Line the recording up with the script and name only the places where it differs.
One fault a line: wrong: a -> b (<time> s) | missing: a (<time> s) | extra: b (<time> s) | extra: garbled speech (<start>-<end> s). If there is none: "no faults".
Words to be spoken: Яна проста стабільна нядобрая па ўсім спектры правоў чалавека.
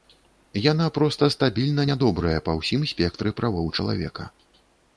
no faults